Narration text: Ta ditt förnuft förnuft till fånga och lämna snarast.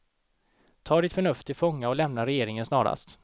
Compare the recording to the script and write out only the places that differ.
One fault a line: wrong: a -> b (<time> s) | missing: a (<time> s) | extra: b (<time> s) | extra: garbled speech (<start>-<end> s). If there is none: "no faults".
missing: förnuft (1.5 s)
extra: regeringen (2.3 s)